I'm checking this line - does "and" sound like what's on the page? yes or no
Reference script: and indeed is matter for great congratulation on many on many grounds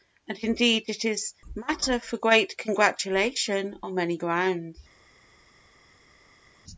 yes